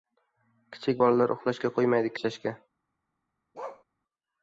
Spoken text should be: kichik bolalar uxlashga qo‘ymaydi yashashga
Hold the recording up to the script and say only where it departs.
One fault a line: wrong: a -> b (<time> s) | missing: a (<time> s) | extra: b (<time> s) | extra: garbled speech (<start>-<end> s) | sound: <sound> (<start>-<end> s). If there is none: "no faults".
sound: bark (3.5-3.8 s)